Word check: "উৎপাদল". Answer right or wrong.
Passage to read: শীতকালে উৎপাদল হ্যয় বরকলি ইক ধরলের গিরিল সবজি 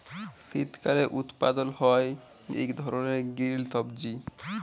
right